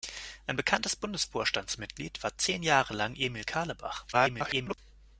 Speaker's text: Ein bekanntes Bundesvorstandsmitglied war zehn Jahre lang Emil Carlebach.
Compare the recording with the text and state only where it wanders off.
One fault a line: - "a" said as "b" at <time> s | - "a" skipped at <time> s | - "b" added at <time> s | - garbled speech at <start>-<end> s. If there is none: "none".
- garbled speech at 4.1-4.8 s